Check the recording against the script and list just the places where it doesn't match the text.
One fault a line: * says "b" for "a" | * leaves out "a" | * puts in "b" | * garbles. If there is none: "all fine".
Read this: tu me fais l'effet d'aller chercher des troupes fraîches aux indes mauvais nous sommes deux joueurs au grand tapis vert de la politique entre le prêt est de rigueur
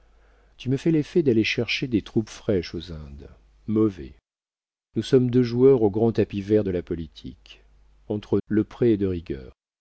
all fine